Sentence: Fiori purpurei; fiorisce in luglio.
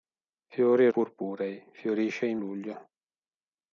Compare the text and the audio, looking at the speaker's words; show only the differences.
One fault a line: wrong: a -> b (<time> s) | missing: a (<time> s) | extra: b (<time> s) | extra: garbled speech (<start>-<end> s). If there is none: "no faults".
no faults